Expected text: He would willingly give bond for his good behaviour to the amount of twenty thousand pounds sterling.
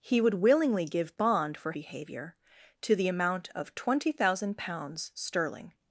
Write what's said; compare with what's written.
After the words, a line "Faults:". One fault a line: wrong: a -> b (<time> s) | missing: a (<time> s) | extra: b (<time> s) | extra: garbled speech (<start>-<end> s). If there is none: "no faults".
He would willingly give bond for behaviour to the amount of twenty thousand pounds sterling.
Faults:
missing: his good (1.7 s)